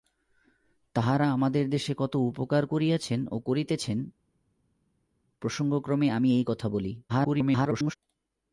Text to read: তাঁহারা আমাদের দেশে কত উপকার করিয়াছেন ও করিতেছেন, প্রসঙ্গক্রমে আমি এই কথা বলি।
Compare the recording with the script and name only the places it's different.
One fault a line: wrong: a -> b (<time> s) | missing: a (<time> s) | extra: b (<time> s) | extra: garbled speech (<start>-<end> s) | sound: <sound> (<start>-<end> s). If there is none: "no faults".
extra: garbled speech (7.1-7.9 s)